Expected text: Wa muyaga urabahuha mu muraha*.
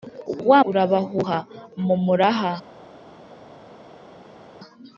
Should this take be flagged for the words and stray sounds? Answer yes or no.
yes